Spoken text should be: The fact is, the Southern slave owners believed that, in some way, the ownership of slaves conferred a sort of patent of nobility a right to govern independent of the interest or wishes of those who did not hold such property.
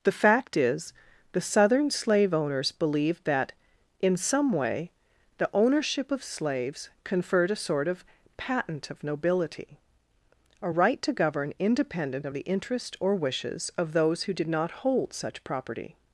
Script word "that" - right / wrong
right